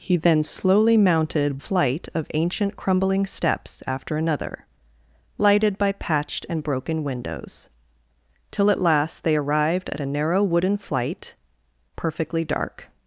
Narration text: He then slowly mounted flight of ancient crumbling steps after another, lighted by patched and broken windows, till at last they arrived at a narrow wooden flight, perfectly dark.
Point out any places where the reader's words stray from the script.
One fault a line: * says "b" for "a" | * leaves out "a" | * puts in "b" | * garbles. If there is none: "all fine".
all fine